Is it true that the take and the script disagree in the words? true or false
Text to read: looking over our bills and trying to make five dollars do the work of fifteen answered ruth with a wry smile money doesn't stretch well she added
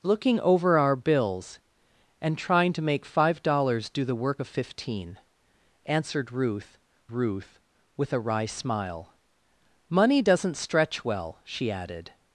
true